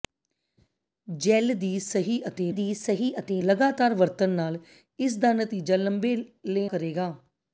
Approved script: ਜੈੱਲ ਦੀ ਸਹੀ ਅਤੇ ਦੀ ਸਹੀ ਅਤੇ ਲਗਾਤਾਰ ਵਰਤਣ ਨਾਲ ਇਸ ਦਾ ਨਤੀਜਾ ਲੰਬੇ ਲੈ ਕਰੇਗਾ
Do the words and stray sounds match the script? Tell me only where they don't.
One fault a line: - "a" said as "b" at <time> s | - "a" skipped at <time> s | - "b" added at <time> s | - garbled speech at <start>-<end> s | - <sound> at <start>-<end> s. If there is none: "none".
none